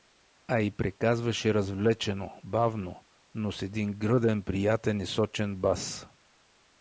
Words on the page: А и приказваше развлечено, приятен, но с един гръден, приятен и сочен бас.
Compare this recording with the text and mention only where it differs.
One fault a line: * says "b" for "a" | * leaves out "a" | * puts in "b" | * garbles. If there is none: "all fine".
* says "бавно" for "приятен"